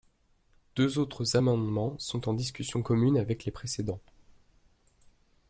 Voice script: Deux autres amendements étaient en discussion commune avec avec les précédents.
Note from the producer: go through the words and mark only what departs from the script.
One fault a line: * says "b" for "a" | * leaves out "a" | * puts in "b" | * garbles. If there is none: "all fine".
* says "sont" for "étaient"
* leaves out "avec"